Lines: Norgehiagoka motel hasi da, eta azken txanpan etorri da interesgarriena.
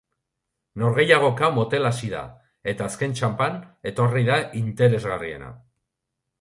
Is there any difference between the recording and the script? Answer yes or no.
no